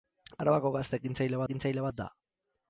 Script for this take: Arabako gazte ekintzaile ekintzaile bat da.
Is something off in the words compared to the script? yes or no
no